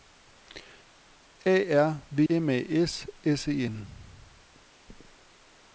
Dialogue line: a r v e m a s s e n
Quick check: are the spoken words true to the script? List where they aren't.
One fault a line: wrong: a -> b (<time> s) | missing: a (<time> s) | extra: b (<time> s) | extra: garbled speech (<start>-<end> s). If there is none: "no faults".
missing: e (2.2 s)